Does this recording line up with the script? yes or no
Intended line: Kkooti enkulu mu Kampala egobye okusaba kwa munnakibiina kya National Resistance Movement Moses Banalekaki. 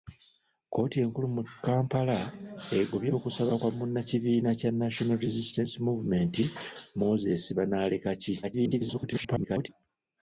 no